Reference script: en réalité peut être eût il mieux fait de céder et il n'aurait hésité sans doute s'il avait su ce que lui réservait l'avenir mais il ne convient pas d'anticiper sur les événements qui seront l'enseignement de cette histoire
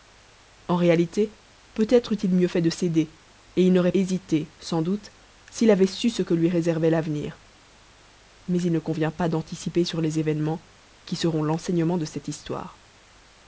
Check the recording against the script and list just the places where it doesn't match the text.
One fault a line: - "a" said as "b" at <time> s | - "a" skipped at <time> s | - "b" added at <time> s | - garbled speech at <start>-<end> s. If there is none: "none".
none